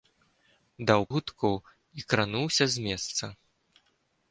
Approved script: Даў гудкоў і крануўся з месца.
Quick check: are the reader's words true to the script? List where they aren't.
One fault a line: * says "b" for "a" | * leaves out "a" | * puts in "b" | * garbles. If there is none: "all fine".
all fine